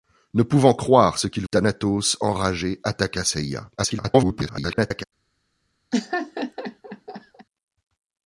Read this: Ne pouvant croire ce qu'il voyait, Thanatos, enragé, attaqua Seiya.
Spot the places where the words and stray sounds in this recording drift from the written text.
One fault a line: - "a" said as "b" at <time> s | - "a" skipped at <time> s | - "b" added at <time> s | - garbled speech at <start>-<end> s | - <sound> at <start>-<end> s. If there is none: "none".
- "voyait" skipped at 1.4 s
- garbled speech at 3.8-5.0 s
- laugh at 5.9-7.5 s